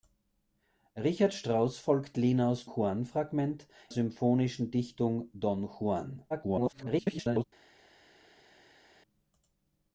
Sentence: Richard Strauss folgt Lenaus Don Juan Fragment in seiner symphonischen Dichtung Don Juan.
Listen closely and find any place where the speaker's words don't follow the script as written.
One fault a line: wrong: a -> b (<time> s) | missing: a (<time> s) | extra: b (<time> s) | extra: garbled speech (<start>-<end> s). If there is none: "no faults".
missing: Don (2.6 s)
missing: in seiner (3.7 s)
extra: garbled speech (6.3-7.4 s)